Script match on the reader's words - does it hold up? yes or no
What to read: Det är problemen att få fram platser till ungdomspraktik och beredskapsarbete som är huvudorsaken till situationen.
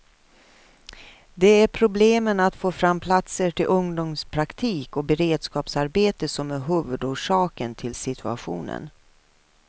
yes